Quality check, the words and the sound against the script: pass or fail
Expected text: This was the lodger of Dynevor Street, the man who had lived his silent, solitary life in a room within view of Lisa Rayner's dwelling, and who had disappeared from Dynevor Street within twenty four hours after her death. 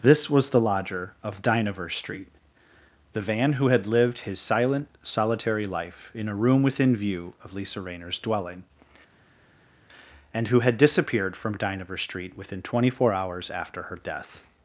fail